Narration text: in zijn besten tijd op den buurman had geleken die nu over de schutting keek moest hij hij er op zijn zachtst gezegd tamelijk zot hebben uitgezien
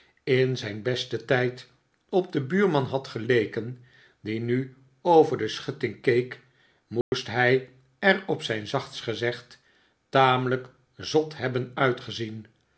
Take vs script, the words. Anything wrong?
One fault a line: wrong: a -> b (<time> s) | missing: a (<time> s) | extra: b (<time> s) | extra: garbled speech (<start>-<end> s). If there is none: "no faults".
missing: hij (7.7 s)